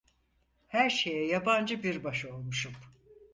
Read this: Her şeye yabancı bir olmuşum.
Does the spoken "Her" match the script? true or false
true